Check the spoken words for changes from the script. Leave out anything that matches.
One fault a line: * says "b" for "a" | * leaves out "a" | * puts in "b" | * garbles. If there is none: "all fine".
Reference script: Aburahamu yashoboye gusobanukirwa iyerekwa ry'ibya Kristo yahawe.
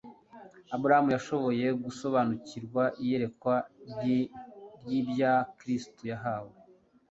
all fine